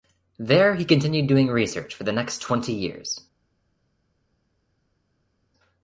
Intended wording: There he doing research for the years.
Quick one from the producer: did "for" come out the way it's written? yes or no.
yes